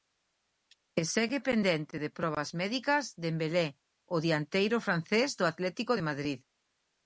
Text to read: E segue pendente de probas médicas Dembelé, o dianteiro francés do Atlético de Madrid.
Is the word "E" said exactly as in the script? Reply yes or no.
yes